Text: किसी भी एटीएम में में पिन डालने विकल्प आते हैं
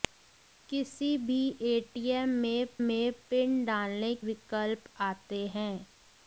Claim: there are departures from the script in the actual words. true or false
false